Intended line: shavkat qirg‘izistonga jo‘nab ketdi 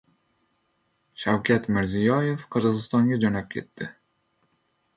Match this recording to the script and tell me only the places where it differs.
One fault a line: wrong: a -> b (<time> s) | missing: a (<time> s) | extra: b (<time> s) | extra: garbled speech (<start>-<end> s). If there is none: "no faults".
extra: mirziyoyev (1.8 s)